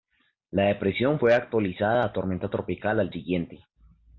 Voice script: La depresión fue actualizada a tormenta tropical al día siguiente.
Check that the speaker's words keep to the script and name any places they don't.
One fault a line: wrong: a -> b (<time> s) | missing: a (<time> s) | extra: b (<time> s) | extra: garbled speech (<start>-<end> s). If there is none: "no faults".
missing: día (3.1 s)